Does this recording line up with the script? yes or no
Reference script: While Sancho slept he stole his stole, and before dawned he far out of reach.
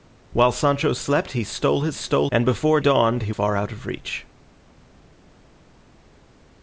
yes